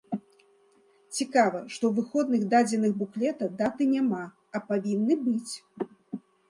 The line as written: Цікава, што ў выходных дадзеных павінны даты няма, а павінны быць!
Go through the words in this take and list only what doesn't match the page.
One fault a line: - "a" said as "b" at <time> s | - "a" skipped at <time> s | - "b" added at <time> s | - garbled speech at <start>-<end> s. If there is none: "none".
- "павінны" said as "буклета" at 3.0 s